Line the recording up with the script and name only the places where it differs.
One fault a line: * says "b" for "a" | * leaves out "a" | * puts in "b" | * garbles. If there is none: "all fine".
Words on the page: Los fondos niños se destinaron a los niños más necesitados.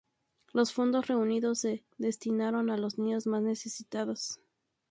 * says "reunidos" for "niños"